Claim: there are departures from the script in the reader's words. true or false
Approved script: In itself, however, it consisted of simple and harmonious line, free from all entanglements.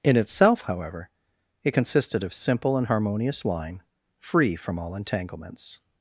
false